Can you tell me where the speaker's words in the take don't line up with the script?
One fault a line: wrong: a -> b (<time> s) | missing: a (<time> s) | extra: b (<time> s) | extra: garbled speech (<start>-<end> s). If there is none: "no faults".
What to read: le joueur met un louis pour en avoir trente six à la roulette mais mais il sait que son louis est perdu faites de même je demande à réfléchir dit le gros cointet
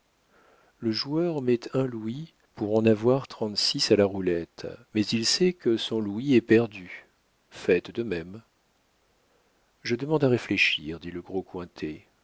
missing: mais (5.0 s)